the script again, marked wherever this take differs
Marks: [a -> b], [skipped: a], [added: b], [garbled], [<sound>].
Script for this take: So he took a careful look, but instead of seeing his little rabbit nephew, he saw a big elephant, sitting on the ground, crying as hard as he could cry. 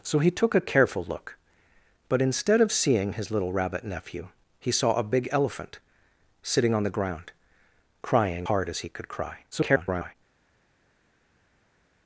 So he took a careful look, but instead of seeing his little rabbit nephew, he saw a big elephant, sitting on the ground, crying [skipped: as] hard as he could cry. [garbled]